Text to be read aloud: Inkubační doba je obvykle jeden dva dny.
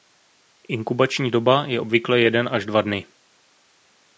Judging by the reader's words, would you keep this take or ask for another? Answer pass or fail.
fail